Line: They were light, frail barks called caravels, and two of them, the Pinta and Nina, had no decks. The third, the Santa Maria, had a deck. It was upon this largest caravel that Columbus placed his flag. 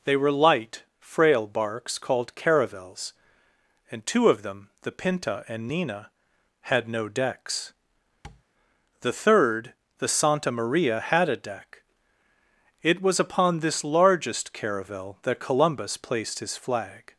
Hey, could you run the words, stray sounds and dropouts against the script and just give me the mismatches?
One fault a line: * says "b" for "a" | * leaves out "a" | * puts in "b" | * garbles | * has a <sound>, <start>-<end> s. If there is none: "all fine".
* has a tap, 8.2-8.4 s